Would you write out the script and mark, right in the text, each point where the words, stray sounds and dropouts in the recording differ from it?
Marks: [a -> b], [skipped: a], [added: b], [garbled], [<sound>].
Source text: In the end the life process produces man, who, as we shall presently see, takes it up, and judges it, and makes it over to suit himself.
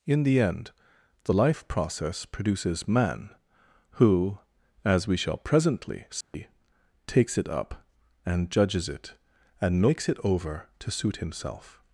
In the end the life process produces man, who, as we shall presently see, [dropout] takes it up, and judges it, and makes it over to suit himself.